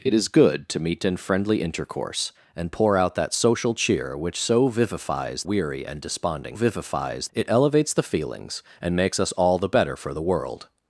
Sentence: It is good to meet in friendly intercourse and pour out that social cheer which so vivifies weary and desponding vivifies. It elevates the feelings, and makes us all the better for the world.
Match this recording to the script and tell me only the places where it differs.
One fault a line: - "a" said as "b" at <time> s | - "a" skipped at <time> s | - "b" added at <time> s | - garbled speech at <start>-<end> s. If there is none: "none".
none